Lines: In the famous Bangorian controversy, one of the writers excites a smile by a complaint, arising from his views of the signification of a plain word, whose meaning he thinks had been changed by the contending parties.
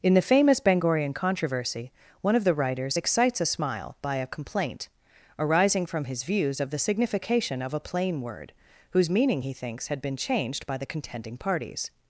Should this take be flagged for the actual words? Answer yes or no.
no